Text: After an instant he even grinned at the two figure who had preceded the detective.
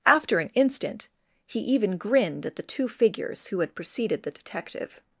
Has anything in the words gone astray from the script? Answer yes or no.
yes